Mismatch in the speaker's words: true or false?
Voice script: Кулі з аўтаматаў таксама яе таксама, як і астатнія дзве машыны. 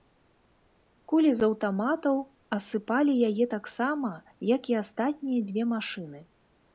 true